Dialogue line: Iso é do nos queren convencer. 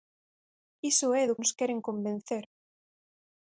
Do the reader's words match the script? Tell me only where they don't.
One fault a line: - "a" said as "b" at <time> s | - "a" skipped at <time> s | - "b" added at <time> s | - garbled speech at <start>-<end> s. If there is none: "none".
none